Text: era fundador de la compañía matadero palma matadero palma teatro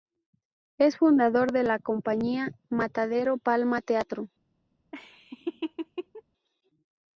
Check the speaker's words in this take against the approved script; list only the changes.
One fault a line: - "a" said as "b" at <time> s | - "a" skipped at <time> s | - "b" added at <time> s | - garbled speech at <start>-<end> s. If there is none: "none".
- "era" said as "es" at 0.8 s
- "matadero palma" skipped at 3.8 s